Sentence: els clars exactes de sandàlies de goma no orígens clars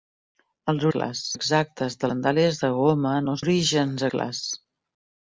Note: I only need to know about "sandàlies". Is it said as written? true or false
true